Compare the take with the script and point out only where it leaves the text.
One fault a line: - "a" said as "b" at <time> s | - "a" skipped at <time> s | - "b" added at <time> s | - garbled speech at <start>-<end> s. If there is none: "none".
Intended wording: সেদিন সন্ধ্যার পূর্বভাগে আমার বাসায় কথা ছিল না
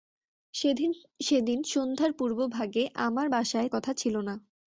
none